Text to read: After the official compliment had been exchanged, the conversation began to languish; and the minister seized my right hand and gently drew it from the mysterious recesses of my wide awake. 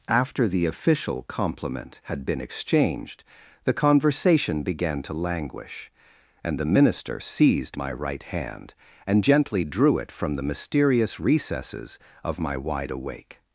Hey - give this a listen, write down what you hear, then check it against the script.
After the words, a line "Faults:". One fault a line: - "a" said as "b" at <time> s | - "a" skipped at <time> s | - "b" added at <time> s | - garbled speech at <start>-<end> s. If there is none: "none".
After the official compliment had been exchanged, the conversation began to languish; and the minister seized my right hand and gently drew it from the mysterious recesses of my wide awake.
Faults:
none